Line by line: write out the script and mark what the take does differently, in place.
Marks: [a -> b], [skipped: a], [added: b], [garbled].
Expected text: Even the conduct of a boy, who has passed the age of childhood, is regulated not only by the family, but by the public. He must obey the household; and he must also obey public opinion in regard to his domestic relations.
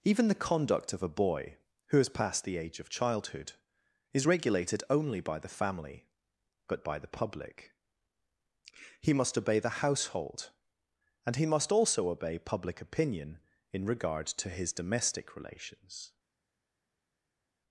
Even the conduct of a boy, who has passed the age of childhood, is regulated [skipped: not] only by the family, but by the public. He must obey the household; and he must also obey public opinion in regard to his domestic relations.